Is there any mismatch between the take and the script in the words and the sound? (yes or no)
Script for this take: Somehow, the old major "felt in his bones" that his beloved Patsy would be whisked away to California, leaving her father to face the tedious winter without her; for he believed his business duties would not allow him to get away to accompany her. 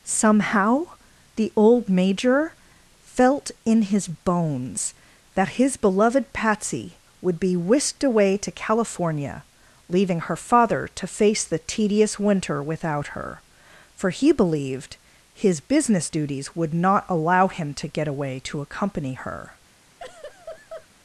yes